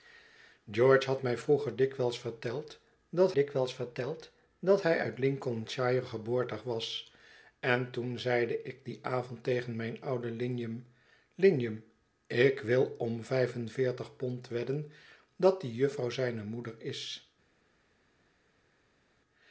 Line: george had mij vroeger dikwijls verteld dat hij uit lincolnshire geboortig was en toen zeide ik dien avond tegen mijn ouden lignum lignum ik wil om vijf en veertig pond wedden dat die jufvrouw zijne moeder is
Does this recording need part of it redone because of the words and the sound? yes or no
yes